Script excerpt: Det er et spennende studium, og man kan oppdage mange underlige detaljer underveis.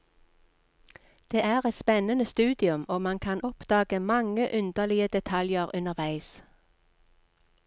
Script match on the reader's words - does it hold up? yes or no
yes